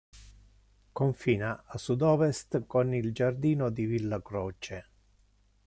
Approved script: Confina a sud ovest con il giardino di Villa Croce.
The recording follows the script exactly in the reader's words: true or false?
true